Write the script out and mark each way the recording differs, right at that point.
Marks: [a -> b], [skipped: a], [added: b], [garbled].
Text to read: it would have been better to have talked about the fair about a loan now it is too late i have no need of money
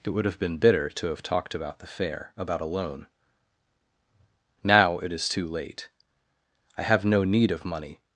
it would have been [better -> bitter] to have talked about the fair about a loan now it is too late i have no need of money